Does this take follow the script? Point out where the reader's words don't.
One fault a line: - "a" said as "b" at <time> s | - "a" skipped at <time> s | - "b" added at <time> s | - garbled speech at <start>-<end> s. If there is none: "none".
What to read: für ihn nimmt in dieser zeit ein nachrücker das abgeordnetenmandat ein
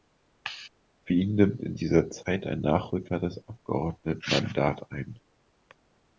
none